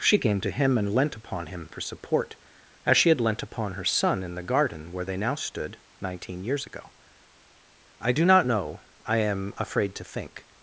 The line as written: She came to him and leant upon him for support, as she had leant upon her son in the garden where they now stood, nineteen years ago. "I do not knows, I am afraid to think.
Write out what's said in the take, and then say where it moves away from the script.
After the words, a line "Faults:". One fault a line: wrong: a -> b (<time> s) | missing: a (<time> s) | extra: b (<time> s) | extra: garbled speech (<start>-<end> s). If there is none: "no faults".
She came to him and leant upon him for support, as she had leant upon her son in the garden where they now stood, nineteen years ago. "I do not know, I am afraid to think.
Faults:
wrong: knows -> know (8.4 s)